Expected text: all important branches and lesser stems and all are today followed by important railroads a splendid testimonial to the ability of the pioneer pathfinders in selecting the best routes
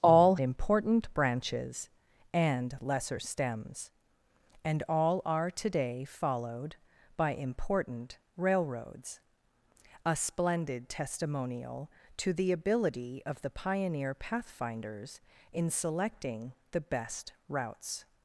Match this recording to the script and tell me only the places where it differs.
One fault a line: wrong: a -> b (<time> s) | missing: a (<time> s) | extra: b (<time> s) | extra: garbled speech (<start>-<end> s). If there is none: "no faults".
no faults